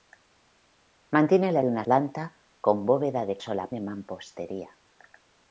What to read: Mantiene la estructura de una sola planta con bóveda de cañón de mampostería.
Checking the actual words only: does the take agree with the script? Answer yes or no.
no